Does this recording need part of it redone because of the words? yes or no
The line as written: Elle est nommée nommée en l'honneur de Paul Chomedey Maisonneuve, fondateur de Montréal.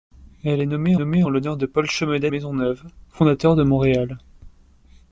no